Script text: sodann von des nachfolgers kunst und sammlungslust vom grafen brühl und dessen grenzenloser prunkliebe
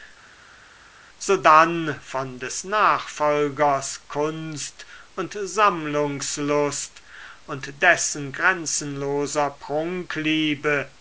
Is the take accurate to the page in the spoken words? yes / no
no